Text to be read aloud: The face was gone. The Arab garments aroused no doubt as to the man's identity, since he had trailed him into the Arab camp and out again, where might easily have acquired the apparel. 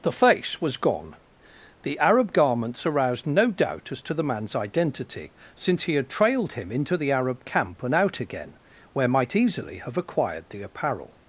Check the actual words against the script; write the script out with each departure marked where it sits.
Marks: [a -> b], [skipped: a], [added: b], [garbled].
The face was gone. The Arab garments aroused no doubt as to the man's identity, since he had trailed him into the Arab camp and out again, where might easily have acquired the apparel.